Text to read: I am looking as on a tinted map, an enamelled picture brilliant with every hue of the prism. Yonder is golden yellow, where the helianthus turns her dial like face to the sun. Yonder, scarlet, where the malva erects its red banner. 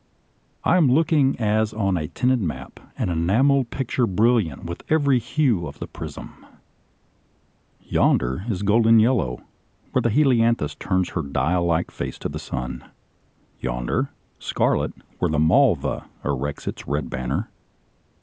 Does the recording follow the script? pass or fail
pass